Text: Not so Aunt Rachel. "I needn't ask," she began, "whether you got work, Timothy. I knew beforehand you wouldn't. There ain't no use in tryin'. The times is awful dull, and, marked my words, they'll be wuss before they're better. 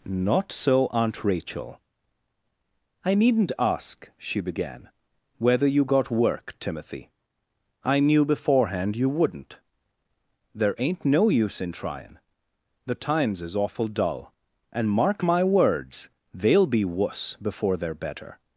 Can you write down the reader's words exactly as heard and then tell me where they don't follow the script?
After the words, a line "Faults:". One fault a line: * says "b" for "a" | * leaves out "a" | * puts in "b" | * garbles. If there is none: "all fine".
Not so Aunt Rachel. "I needn't ask," she began, "whether you got work, Timothy. I knew beforehand you wouldn't. There ain't no use in tryin'. The times is awful dull, and, mark my words, they'll be wuss before they're better.
Faults:
* says "mark" for "marked"